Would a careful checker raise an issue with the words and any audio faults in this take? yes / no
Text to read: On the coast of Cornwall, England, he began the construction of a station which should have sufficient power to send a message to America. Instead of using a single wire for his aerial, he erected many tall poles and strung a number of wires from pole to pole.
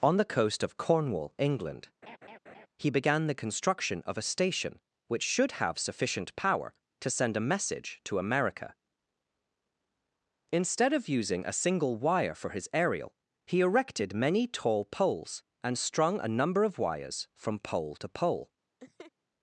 yes